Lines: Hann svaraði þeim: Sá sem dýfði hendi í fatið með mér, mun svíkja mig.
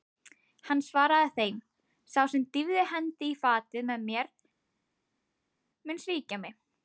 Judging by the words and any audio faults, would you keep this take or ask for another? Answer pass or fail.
pass